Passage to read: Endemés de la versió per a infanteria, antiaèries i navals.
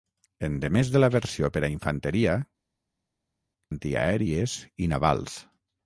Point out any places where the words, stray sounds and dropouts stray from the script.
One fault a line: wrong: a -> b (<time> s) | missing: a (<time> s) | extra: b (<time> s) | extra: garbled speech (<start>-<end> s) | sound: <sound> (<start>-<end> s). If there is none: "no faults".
no faults